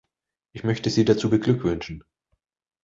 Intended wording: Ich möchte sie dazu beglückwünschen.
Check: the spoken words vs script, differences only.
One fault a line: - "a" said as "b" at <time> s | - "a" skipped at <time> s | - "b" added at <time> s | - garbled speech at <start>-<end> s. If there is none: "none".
none